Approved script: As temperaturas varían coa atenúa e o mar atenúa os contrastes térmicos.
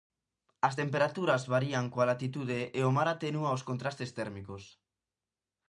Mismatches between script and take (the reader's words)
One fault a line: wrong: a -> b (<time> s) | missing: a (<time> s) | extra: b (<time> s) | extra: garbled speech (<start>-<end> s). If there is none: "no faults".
wrong: atenúa -> latitude (2.1 s)